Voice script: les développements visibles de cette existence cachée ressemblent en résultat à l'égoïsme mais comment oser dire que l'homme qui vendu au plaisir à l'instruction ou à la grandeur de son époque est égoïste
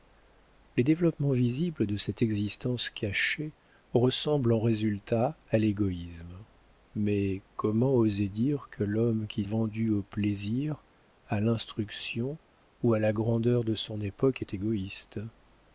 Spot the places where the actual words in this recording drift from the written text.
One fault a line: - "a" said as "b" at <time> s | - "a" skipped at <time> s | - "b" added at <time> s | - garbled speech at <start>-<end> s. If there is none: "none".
none